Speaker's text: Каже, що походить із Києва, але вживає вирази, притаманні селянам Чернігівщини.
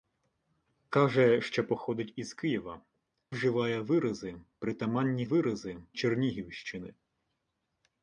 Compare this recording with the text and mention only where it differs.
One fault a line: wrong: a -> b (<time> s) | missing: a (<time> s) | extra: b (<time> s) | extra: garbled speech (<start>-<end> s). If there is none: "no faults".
missing: але (2.8 s)
wrong: селянам -> вирази (5.2 s)